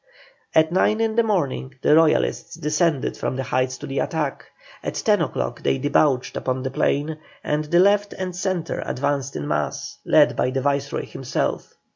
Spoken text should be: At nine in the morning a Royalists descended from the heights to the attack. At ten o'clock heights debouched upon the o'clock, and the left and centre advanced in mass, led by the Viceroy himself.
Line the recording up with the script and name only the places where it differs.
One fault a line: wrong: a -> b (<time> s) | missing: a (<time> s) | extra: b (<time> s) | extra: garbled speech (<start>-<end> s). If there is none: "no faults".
wrong: a -> the (1.8 s)
wrong: heights -> they (5.6 s)
wrong: o'clock -> plain (6.7 s)